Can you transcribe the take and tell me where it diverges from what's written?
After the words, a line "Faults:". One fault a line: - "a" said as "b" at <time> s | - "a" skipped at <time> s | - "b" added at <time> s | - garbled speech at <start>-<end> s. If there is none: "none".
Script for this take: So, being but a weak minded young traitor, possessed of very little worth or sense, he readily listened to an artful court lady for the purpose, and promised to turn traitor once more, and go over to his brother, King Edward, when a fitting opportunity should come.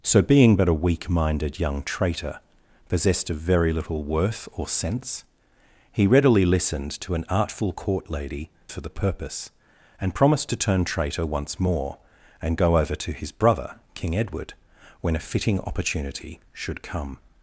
So, being but a weak minded young traitor, possessed of very little worth or sense, he readily listened to an artful court lady for the purpose, and promised to turn traitor once more, and go over to his brother, King Edward, when a fitting opportunity should come.
Faults:
none